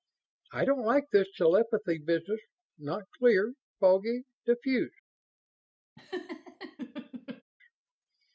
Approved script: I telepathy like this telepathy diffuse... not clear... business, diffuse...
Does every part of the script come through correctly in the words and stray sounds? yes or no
no